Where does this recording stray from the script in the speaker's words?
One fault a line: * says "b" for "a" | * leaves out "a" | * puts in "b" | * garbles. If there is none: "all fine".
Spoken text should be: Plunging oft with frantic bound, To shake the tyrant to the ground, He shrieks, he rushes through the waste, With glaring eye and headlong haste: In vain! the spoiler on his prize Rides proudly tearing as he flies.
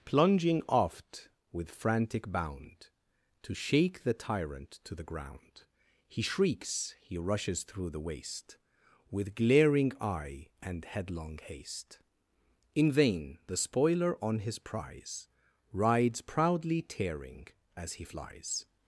all fine